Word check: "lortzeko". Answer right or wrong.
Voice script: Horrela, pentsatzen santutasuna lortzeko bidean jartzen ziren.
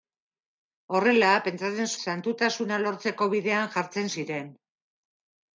right